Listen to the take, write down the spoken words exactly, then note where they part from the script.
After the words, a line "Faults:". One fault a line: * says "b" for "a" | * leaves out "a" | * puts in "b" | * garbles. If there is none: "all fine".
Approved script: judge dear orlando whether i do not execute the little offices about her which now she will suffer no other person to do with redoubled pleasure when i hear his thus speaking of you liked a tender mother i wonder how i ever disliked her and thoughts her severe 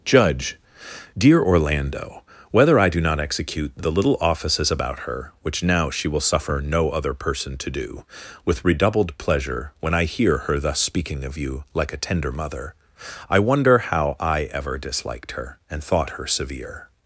judge dear orlando whether i do not execute the little offices about her which now she will suffer no other person to do with redoubled pleasure when i hear her thus speaking of you like a tender mother i wonder how i ever disliked her and thought her severe
Faults:
* says "her" for "his"
* says "like" for "liked"
* says "thought" for "thoughts"